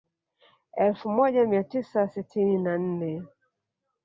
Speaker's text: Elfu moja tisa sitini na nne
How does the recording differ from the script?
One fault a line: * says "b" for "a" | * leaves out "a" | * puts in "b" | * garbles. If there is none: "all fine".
* puts in "mia"